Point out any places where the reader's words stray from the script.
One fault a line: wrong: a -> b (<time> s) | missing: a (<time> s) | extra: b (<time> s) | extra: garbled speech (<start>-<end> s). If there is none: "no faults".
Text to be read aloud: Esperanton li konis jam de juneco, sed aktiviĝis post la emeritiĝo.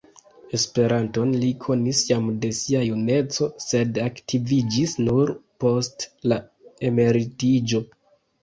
extra: sia (2.6 s)
extra: nur (5.1 s)